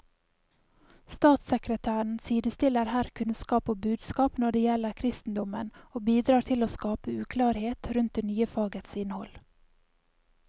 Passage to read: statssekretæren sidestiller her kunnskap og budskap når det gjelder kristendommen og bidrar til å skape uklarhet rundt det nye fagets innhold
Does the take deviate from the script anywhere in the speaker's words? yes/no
no